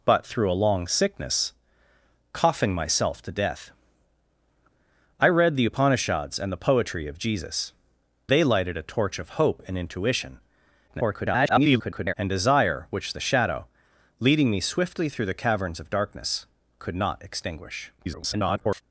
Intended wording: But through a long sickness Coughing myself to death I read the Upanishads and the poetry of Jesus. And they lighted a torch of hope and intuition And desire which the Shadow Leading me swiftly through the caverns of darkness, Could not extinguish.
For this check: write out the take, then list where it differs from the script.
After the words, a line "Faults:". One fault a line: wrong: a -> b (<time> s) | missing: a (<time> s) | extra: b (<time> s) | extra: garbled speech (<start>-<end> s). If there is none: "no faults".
But through a long sickness Coughing myself to death I read the Upanishads and the poetry of Jesus. They lighted a torch of hope and intuition [garbled] And desire which the Shadow Leading me swiftly through the caverns of darkness, Could not extinguish. [garbled]
Faults:
missing: And (7.7 s)
extra: garbled speech (10.9-12.1 s)
extra: garbled speech (18.0-18.8 s)